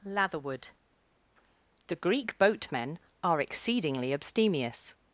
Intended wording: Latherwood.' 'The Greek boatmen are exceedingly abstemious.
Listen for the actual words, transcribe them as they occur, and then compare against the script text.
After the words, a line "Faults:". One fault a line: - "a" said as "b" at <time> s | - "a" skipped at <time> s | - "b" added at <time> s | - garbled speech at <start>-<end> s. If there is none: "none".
Latherwood.' 'The Greek boatmen are exceedingly abstemious.
Faults:
none